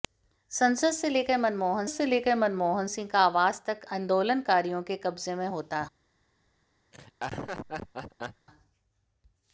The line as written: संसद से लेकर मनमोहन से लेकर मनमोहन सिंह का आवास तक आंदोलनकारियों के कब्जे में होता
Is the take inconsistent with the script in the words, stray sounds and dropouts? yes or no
yes